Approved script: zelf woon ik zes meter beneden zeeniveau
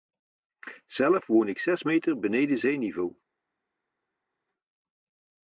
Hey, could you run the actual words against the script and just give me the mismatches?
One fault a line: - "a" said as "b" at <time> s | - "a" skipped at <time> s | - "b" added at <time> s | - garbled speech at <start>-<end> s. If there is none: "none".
none